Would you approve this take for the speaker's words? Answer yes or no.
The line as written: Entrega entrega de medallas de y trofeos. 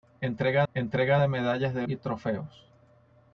yes